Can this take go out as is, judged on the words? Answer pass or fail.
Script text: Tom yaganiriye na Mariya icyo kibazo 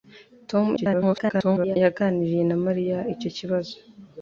fail